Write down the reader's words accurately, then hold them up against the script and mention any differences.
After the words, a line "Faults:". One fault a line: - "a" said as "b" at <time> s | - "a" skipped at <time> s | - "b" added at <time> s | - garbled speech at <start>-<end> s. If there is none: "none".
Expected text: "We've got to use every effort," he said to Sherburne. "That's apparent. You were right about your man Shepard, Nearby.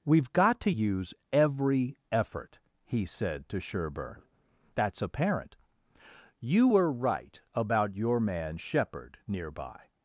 "We've got to use every effort," he said to Sherburne. "That's apparent. You were right about your man Shepard, Nearby.
Faults:
none